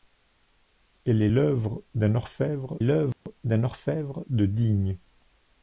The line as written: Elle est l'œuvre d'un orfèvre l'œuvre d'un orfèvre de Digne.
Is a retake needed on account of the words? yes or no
no